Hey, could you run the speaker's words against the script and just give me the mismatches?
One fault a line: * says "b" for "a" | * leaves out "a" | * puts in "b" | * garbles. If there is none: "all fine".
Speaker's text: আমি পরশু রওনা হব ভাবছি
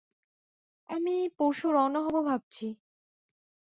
all fine